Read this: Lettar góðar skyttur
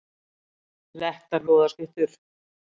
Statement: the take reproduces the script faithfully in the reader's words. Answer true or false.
true